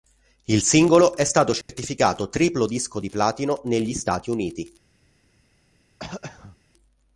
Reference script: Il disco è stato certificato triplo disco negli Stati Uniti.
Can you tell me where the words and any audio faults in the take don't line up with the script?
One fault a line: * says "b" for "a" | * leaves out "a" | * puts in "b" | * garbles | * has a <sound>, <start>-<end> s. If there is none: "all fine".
* says "singolo" for "disco"
* has a dropout, 1.6-1.7 s
* puts in "di platino"
* has a throat clearing, 6.0-6.6 s